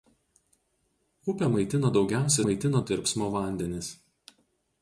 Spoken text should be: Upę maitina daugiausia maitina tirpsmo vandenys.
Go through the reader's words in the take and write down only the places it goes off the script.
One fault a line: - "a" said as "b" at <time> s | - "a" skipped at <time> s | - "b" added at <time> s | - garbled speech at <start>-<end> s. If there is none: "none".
none